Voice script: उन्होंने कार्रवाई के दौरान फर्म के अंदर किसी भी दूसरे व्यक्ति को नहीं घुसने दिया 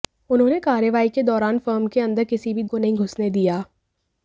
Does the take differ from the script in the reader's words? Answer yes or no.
yes